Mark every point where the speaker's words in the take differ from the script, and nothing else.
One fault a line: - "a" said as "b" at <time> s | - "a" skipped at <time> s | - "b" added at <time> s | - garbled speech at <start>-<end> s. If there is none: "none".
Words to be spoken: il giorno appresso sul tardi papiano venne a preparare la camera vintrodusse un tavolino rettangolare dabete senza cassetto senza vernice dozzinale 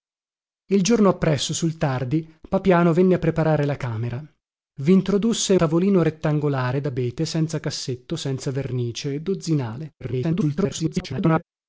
- "un" skipped at 5.5 s
- garbled speech at 10.0-11.4 s